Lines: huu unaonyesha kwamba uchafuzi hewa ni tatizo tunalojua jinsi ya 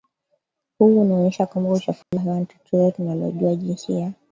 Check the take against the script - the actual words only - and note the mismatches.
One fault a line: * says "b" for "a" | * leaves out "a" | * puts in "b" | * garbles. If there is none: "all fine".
all fine